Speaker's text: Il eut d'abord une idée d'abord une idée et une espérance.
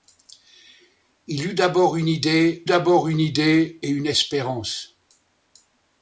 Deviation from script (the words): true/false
false